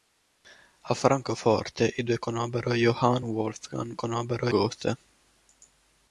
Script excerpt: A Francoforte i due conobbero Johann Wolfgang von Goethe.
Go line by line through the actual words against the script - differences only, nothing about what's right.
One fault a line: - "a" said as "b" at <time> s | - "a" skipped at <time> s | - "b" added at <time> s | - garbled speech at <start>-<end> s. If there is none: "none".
- "von" said as "conobbero" at 3.9 s